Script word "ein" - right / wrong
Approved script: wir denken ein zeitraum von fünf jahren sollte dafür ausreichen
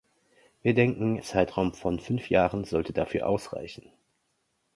wrong